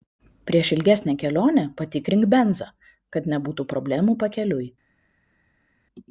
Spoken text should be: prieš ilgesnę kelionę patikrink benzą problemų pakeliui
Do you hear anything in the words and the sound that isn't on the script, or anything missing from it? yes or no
yes